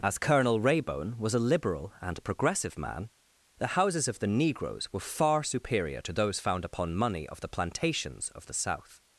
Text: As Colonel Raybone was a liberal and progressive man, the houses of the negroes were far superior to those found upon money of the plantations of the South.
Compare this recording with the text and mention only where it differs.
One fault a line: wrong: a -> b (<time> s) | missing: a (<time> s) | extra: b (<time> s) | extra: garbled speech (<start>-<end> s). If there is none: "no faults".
no faults